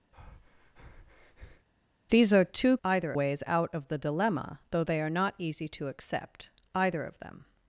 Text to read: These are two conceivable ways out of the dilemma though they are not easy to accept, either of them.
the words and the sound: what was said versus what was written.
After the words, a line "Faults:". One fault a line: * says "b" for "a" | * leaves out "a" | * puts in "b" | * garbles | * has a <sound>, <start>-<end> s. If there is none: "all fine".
These are two either ways out of the dilemma though they are not easy to accept, either of them.
Faults:
* has a breath, 0.1-1.7 s
* says "either" for "conceivable"